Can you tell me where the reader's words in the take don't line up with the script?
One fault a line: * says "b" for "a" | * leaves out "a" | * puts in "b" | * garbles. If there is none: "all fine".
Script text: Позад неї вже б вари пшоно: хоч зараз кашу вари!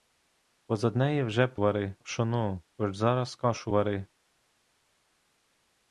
all fine